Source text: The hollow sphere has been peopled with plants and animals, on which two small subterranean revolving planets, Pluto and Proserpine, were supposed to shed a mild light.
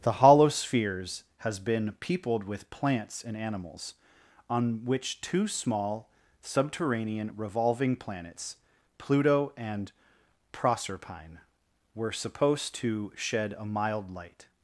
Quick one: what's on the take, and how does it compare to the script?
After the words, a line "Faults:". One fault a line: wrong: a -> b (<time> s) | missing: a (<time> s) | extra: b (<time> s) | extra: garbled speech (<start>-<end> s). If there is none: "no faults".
The hollow spheres has been peopled with plants and animals, on which two small subterranean revolving planets, Pluto and Proserpine, were supposed to shed a mild light.
Faults:
wrong: sphere -> spheres (0.5 s)